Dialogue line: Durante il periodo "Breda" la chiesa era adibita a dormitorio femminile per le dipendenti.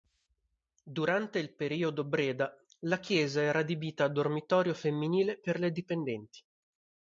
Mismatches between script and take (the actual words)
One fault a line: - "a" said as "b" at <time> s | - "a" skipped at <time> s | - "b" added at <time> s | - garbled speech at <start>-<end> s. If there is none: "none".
none